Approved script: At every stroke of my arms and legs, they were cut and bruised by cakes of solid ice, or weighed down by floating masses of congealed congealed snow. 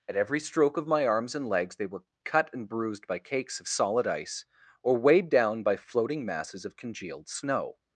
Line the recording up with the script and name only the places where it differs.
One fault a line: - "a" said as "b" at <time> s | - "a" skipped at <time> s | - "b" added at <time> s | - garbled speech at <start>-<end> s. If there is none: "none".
- "congealed" skipped at 7.3 s